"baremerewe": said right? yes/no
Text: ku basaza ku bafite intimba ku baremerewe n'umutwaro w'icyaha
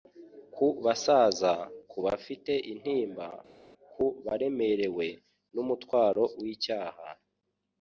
yes